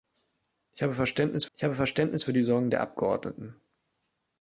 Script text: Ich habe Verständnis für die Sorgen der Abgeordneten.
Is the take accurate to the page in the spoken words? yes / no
no